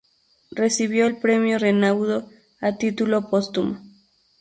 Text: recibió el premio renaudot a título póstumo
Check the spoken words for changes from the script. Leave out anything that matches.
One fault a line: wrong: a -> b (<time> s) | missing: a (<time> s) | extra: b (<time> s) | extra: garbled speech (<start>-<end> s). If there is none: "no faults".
no faults